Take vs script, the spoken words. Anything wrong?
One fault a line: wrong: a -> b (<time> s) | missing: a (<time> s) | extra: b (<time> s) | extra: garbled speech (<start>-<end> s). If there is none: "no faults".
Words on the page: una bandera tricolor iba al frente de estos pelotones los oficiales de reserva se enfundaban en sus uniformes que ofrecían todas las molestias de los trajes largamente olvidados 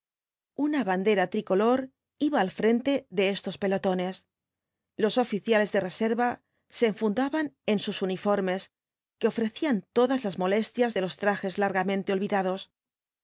no faults